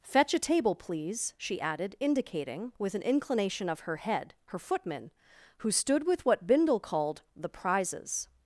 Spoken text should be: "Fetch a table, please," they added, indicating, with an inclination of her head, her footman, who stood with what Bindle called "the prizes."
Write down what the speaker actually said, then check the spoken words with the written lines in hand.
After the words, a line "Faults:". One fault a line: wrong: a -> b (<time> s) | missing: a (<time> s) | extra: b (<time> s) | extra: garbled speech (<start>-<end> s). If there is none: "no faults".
"Fetch a table, please," she added, indicating, with an inclination of her head, her footman, who stood with what Bindle called "the prizes."
Faults:
wrong: they -> she (1.4 s)